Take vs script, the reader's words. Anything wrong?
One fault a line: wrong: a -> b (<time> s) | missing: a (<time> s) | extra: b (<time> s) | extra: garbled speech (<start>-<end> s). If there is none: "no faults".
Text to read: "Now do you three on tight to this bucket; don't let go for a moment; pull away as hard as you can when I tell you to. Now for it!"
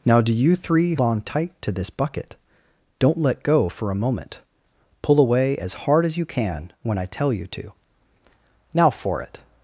no faults